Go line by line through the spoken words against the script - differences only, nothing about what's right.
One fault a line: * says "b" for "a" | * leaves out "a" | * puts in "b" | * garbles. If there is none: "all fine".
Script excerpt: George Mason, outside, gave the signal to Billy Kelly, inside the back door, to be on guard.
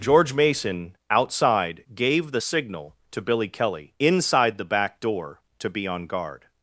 all fine